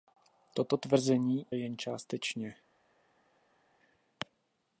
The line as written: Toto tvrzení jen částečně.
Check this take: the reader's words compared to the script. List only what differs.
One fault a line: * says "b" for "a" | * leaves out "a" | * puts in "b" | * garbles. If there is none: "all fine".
all fine